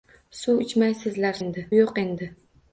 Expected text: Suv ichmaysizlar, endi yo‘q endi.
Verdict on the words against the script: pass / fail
pass